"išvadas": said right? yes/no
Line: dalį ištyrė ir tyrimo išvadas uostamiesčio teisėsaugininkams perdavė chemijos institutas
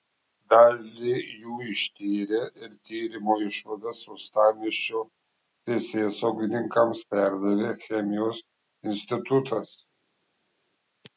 yes